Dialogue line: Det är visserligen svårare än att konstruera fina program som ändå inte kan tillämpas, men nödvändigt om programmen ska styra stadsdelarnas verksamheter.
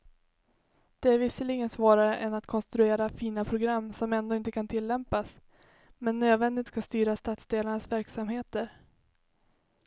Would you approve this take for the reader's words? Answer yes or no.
no